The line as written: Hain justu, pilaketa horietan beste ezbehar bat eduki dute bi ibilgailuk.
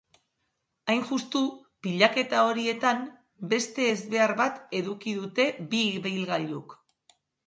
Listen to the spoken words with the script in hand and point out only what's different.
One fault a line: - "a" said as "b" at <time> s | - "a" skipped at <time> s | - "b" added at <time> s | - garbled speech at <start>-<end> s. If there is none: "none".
none